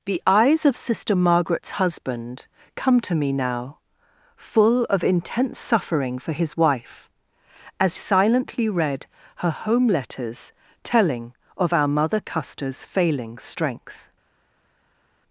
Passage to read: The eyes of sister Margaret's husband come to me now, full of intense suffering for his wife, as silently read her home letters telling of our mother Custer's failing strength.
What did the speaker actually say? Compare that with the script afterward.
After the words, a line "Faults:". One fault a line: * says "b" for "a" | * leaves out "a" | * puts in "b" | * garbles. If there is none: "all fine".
The eyes of sister Margaret's husband come to me now, full of intense suffering for his wife, as silently read her home letters telling of our mother Custer's failing strength.
Faults:
all fine